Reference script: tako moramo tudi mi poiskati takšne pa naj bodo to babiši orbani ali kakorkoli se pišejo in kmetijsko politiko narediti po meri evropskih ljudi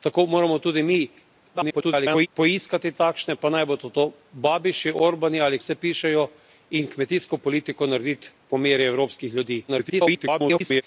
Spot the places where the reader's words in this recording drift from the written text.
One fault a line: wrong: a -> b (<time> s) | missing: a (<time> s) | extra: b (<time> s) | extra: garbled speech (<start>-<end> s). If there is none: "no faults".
extra: garbled speech (1.5-2.3 s)
missing: kakorkoli (5.6 s)
extra: garbled speech (9.7-10.8 s)